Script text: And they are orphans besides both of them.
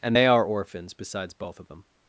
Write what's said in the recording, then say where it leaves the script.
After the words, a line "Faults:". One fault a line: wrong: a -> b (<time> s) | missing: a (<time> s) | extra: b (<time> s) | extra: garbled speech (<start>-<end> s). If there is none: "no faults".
And they are orphans besides both of them.
Faults:
no faults